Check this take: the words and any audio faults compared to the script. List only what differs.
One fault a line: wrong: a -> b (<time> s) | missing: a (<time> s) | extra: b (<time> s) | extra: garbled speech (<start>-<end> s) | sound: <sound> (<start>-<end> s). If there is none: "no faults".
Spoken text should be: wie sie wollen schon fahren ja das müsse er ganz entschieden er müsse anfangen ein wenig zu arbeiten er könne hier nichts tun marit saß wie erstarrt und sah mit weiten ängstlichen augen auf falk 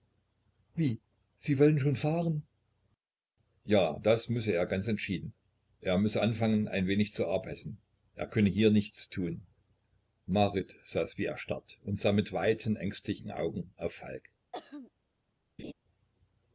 sound: throat clearing (14.5-14.9 s)
sound: laugh (15.6-15.7 s)